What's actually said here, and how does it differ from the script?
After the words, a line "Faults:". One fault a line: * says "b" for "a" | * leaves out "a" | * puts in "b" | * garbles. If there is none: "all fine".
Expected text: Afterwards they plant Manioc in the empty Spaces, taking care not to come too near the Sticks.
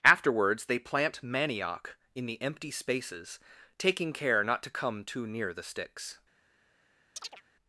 Afterwards they plant Manioc in the empty Spaces, taking care not to come too near the Sticks.
Faults:
all fine